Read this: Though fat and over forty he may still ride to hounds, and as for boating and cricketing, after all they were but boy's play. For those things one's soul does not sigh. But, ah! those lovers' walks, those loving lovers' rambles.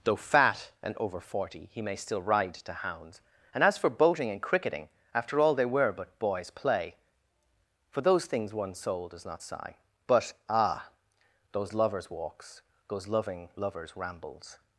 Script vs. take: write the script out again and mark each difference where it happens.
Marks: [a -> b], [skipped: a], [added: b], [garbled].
Though fat and over forty he may still ride to hounds, and as for boating and cricketing, after all they were but boy's play. For those things one's soul does not sigh. But, ah! those lovers' walks, those loving lovers' rambles.